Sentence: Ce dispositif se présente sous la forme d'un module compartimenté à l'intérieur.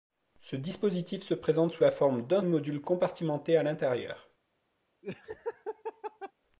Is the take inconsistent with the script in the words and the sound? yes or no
yes